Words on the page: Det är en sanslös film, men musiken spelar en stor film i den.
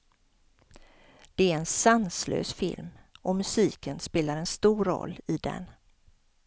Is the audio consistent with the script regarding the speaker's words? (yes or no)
no